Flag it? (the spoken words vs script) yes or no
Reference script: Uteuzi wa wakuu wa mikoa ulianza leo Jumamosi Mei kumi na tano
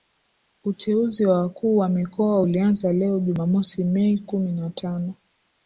no